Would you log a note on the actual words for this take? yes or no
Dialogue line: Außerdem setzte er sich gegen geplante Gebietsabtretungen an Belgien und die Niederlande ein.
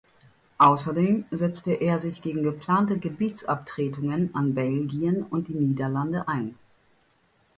no